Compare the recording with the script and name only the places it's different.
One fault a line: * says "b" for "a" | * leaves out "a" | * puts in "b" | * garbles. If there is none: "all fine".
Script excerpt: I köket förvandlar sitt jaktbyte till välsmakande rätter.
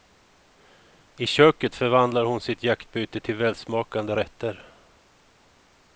* puts in "hon"